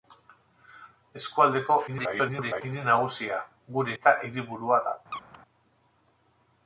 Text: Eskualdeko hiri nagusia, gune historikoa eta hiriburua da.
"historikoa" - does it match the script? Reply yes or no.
no